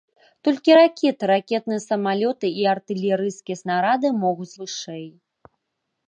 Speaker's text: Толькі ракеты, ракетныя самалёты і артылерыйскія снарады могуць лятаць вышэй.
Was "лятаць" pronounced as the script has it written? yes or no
no